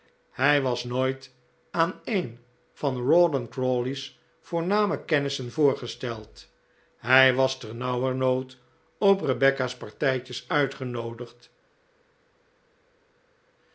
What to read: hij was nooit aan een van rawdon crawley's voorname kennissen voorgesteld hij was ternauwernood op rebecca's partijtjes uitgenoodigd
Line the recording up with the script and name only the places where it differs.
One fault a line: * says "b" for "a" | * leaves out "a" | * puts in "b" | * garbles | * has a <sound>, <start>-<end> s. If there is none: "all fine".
all fine